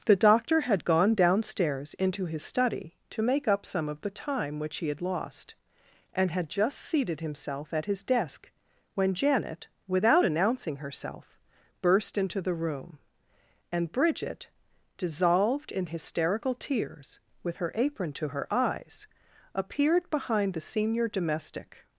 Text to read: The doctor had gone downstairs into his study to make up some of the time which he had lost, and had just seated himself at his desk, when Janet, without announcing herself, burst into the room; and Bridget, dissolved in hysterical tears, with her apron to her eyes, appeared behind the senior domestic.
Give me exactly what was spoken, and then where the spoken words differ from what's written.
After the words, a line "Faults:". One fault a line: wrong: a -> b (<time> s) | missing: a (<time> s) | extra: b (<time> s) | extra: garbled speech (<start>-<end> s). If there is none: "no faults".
The doctor had gone downstairs into his study to make up some of the time which he had lost, and had just seated himself at his desk, when Janet, without announcing herself, burst into the room; and Bridget, dissolved in hysterical tears, with her apron to her eyes, appeared behind the senior domestic.
Faults:
no faults